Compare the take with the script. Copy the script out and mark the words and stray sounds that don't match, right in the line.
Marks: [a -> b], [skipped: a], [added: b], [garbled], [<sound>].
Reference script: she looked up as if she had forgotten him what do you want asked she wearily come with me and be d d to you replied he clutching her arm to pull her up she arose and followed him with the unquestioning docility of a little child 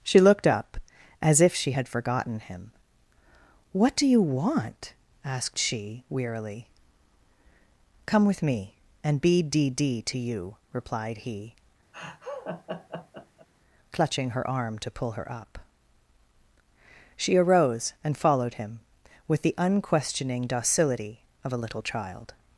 she looked up as if she had forgotten him what do you want asked she wearily come with me and be d d to you replied he [laugh] clutching her arm to pull her up she arose and followed him with the unquestioning docility of a little child